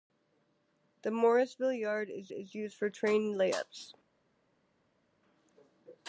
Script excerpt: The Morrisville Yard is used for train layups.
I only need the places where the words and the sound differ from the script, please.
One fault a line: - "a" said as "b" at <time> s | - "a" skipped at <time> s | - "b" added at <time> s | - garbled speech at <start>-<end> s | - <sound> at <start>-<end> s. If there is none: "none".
- "is" added at 2.3 s